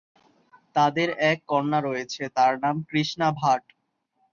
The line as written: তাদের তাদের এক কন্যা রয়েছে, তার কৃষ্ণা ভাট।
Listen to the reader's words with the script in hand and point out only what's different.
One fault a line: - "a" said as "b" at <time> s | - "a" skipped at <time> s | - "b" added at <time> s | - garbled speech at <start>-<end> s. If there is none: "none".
- "তাদের" skipped at 1.1 s
- "নাম" added at 2.6 s